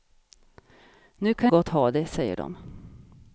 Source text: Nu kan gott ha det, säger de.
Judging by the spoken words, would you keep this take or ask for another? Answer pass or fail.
pass